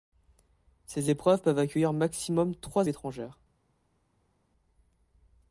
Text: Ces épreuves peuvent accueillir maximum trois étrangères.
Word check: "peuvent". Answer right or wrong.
right